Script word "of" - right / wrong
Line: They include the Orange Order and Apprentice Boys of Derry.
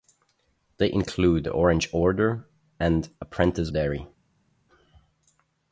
wrong